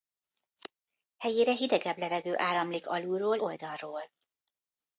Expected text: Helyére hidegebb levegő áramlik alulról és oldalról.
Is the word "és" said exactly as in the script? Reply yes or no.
no